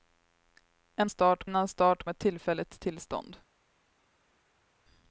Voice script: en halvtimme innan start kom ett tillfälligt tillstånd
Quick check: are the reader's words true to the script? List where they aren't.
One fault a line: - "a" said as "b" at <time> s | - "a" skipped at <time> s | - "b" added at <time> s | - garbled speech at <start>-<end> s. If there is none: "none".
- "halvtimme" said as "start" at 1.1 s
- "kom" skipped at 2.0 s